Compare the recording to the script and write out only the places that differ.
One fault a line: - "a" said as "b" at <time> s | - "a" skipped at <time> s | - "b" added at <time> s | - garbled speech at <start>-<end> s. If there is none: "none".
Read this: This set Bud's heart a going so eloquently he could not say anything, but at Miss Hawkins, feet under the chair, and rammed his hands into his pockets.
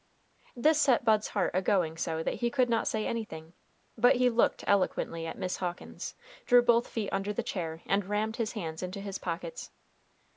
- "eloquently" said as "that" at 2.2 s
- "he looked eloquently" added at 4.1 s
- "drew both" added at 6.4 s